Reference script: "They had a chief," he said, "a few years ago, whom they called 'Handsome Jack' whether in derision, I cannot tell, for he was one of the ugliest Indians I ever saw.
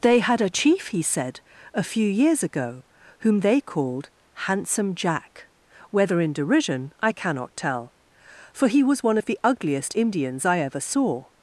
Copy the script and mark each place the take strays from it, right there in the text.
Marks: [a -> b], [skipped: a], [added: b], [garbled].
"They had a chief," he said, "a few years ago, whom they called 'Handsome Jack' whether in derision, I cannot tell, for he was one of the ugliest Indians I ever saw.